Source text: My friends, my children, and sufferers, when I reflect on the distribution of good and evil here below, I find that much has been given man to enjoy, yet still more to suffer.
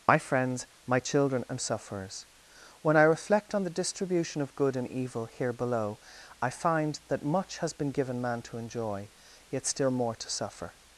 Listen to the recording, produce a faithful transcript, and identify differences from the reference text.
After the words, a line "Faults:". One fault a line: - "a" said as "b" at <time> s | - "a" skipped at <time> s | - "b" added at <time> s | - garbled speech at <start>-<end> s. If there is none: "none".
My friends, my children, and sufferers, when I reflect on the distribution of good and evil here below, I find that much has been given man to enjoy, yet still more to suffer.
Faults:
none